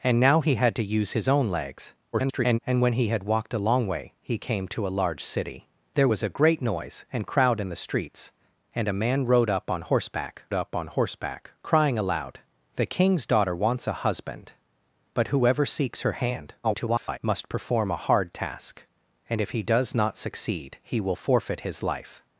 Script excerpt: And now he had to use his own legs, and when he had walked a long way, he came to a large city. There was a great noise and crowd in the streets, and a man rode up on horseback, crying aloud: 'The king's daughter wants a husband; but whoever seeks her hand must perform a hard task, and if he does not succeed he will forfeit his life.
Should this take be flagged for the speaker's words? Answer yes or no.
yes